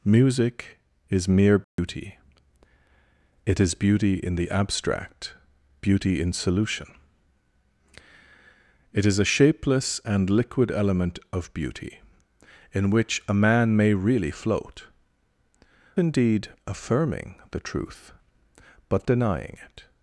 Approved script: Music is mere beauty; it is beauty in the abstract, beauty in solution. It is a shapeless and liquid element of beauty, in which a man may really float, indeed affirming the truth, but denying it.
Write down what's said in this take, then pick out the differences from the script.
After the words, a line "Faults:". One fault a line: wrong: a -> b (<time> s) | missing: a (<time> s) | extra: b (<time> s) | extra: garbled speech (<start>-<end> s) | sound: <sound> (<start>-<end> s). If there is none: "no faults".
Music is mere beauty; it is beauty in the abstract, beauty in solution. It is a shapeless and liquid element of beauty, in which a man may really float, indeed affirming the truth, but denying it.
Faults:
sound: dropout (1.6-1.8 s)